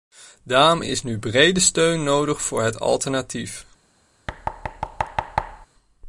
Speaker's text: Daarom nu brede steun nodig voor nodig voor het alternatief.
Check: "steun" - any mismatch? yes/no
no